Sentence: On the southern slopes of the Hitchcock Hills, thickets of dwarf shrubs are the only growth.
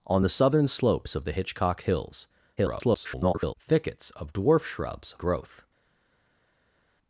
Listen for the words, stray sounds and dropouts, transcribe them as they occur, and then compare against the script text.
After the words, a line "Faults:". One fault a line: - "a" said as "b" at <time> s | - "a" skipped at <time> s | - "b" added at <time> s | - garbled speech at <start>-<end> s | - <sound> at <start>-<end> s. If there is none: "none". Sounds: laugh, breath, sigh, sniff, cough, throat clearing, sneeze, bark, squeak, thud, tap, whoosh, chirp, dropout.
On the southern slopes of the Hitchcock Hills, [garbled] thickets of dwarf shrubs growth.
Faults:
- garbled speech at 2.6-3.5 s
- "are the only" skipped at 5.1 s